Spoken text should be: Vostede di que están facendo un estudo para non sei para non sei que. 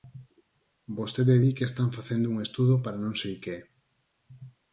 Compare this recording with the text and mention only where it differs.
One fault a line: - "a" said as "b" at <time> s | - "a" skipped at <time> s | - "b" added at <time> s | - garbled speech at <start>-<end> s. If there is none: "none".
- "para non sei" skipped at 3.3 s